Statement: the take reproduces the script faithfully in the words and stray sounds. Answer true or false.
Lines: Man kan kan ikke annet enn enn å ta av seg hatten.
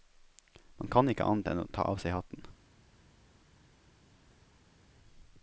false